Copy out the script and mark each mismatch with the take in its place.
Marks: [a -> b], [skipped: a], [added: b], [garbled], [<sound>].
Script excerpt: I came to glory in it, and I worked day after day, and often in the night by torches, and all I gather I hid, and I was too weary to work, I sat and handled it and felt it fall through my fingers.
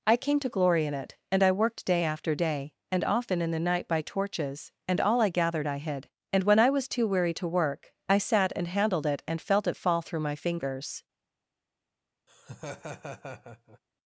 I came to glory in it, and I worked day after day, and often in the night by torches, and all I [gather -> gathered] I hid, and [added: when] I was too weary to work, I sat and handled it and felt it fall through my fingers. [laugh]